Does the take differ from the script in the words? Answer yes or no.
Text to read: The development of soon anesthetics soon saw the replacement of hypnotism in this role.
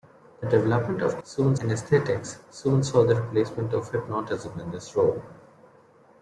no